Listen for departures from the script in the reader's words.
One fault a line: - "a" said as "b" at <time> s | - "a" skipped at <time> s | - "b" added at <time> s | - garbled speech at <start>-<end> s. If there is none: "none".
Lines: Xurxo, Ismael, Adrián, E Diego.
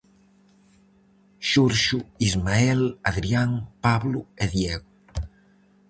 - "Pablo" added at 3.8 s